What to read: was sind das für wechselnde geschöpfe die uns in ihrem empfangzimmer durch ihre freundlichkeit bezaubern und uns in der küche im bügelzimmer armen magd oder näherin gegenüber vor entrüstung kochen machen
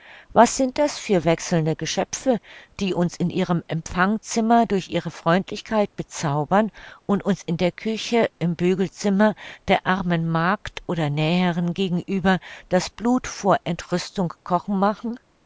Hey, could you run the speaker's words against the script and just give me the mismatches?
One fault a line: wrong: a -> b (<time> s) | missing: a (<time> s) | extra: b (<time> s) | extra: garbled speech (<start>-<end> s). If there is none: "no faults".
extra: der (9.7 s)
extra: das blut (12.7 s)